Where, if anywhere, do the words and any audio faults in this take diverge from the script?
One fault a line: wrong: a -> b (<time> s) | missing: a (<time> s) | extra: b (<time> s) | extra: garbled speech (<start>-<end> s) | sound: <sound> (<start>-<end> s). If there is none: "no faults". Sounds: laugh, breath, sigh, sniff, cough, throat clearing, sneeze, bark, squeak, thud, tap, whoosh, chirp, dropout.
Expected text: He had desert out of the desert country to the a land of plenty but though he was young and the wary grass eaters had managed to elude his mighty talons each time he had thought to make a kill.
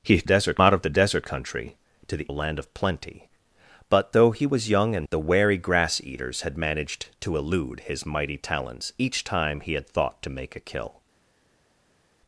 no faults